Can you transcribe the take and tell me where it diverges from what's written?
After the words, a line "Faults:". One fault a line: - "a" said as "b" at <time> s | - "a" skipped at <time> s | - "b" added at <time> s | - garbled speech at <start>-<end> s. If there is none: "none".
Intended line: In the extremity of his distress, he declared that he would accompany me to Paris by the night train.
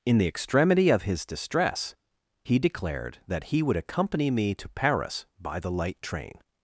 In the extremity of his distress, he declared that he would accompany me to Paris by the light train.
Faults:
- "night" said as "light" at 5.7 s